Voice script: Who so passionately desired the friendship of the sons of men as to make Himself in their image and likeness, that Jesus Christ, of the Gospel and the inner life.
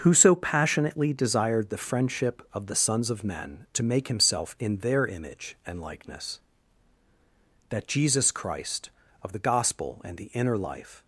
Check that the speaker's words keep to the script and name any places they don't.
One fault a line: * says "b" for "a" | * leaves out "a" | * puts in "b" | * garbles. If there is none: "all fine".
* leaves out "as"